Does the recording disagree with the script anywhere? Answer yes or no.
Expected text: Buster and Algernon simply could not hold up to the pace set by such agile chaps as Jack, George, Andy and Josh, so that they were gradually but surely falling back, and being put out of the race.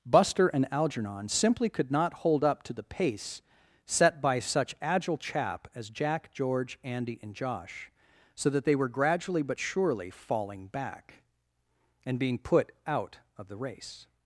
yes